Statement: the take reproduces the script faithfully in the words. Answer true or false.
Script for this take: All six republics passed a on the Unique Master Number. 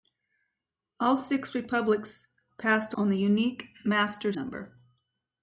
true